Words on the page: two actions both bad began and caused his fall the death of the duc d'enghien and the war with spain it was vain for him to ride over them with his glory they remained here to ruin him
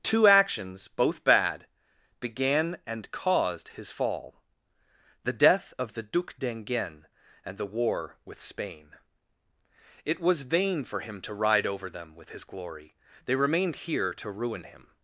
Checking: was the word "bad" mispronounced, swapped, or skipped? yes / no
no